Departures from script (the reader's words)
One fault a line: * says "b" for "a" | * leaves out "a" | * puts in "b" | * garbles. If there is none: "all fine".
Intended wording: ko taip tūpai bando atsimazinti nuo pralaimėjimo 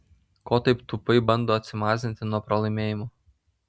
all fine